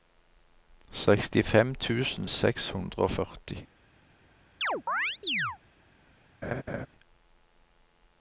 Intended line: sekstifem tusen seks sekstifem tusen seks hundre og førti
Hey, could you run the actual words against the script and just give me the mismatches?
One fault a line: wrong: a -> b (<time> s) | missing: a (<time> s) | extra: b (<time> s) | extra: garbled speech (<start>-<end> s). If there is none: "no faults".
missing: sekstifem tusen seks (2.7 s)